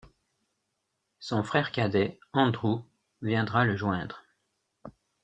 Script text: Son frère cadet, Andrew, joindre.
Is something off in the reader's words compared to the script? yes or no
yes